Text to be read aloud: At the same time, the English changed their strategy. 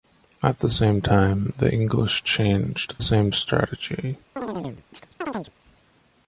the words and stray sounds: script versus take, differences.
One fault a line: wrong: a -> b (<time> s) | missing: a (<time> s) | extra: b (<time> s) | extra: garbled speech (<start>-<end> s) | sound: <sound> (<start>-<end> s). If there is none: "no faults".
wrong: their -> same (3.0 s)
sound: chirp (4.4-5.5 s)